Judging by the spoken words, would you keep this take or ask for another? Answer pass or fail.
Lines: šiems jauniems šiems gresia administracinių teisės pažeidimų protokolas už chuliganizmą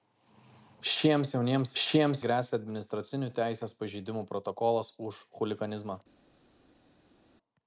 pass